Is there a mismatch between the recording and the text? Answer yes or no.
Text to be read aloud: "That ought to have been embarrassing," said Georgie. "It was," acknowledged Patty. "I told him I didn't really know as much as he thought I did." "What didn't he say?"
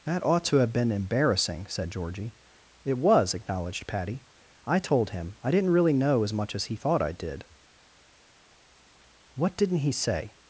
no